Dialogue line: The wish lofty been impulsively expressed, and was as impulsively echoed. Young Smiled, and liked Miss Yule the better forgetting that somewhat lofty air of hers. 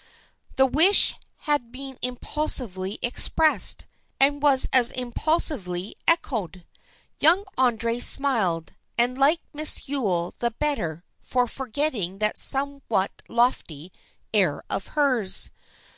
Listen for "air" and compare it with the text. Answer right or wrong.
right